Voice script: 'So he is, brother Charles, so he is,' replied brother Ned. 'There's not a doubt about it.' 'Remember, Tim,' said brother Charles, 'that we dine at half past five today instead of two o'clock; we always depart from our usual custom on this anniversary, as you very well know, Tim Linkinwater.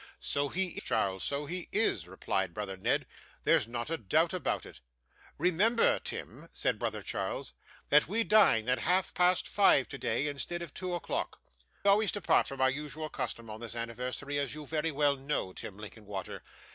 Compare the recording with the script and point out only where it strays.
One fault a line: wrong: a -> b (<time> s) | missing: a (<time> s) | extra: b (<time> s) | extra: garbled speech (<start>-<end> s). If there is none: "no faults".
missing: is brother (0.8 s)
missing: we (11.4 s)